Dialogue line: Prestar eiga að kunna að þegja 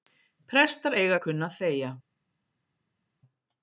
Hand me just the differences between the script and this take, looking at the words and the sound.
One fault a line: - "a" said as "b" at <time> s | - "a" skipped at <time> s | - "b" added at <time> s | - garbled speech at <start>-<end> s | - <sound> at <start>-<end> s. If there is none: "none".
none